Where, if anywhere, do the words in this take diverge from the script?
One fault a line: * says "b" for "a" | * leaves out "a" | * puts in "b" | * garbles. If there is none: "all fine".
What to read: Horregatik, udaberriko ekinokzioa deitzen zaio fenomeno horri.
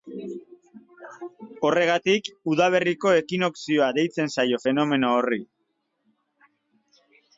all fine